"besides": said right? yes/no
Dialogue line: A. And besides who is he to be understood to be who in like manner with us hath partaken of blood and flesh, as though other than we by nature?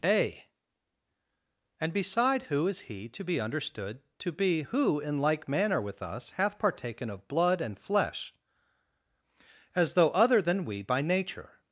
no